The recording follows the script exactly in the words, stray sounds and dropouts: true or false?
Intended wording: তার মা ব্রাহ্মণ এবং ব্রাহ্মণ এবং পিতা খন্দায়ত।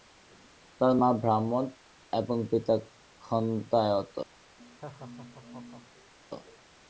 false